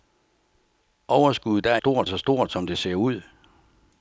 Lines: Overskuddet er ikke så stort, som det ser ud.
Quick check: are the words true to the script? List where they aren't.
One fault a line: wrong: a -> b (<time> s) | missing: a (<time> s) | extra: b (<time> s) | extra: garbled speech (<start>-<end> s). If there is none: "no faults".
wrong: ikke -> stort (1.8 s)